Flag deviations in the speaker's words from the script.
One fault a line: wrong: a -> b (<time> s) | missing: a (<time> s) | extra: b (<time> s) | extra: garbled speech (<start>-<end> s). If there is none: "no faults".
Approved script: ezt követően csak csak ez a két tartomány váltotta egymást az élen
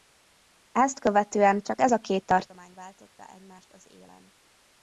missing: csak (1.8 s)